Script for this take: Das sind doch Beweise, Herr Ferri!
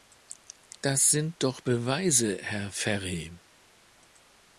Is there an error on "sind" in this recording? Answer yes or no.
no